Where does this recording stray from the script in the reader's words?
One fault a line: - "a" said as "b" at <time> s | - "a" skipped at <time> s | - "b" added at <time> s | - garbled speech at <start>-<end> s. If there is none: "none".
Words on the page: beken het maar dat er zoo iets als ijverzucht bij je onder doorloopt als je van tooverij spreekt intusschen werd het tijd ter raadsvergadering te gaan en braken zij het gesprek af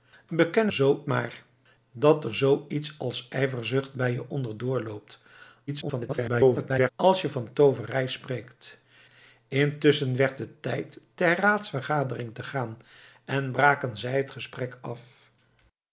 - "het" said as "zoo" at 0.7 s
- garbled speech at 5.7-6.9 s